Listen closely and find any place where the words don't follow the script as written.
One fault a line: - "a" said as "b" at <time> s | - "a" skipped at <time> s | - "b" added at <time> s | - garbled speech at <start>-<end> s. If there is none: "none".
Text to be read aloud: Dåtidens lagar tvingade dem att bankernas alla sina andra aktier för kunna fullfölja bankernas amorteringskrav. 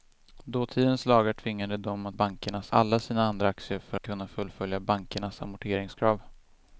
none